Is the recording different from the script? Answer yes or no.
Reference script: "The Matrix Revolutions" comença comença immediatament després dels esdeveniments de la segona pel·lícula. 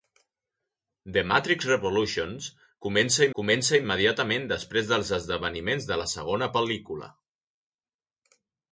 no